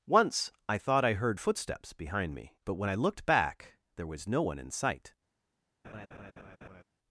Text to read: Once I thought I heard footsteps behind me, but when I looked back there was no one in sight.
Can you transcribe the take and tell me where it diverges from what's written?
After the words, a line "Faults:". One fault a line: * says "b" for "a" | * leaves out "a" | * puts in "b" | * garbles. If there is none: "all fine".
Once I thought I heard footsteps behind me, but when I looked back there was no one in sight.
Faults:
all fine